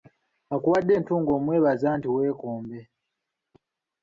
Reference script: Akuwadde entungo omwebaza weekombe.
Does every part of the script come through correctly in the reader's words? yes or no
no